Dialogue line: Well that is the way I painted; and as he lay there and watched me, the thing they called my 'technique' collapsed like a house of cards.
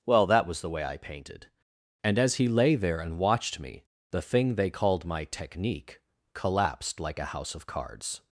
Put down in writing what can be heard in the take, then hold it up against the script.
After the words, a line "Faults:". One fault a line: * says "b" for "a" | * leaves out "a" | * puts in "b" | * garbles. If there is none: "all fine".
Well that was the way I painted; and as he lay there and watched me, the thing they called my 'technique' collapsed like a house of cards.
Faults:
* says "was" for "is"